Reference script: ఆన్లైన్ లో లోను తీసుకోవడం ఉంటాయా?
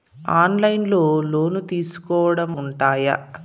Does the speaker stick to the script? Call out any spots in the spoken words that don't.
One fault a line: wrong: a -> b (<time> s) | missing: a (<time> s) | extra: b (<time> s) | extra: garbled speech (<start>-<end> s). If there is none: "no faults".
no faults